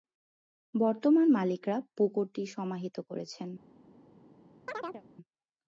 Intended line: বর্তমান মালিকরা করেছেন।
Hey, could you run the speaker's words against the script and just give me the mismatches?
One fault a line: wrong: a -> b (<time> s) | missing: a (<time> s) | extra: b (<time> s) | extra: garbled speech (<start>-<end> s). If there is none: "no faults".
extra: পুকুরটি সমাহিত (1.9 s)